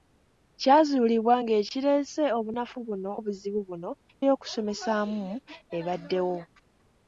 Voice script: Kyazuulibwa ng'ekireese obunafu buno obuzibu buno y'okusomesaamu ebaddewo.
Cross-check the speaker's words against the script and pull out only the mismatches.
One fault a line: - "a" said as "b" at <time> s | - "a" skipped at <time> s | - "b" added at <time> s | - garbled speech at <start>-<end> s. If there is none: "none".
none